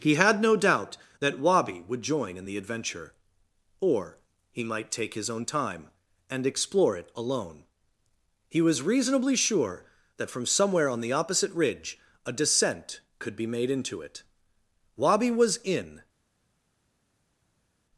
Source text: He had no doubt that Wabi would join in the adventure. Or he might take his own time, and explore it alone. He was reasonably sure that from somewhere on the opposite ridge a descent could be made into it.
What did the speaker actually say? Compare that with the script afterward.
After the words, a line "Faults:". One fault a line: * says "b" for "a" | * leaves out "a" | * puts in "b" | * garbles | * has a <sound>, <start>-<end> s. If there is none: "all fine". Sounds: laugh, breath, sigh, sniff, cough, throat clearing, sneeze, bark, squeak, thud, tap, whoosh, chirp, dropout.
He had no doubt that Wabi would join in the adventure. Or he might take his own time, and explore it alone. He was reasonably sure that from somewhere on the opposite ridge a descent could be made into it. Wabi was in
Faults:
* puts in "Wabi was in"